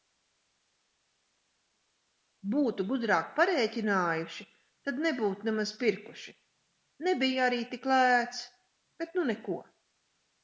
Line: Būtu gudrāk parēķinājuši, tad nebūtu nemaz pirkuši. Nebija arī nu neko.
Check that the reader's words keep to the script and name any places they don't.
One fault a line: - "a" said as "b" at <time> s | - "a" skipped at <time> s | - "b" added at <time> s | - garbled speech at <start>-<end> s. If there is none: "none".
- "tik lēts bet" added at 7.7 s